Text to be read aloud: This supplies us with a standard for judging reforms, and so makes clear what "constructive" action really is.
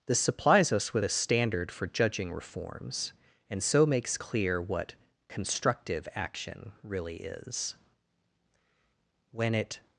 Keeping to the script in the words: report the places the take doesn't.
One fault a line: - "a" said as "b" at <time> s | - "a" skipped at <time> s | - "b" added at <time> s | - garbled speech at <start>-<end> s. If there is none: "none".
- "When it" added at 9.3 s